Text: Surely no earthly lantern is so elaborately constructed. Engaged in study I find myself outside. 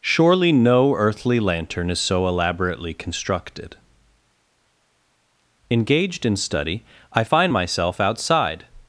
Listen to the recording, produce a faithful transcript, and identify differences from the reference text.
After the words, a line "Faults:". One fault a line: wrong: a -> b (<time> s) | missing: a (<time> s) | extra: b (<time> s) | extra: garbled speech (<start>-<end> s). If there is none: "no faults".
Surely no earthly lantern is so elaborately constructed. Engaged in study I find myself outside.
Faults:
no faults